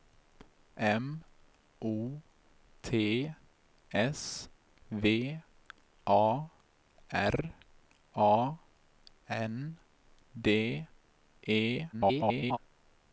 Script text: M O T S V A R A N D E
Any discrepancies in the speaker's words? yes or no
yes